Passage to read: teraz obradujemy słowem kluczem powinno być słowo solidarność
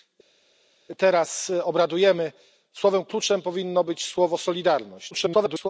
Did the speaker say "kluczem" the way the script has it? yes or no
yes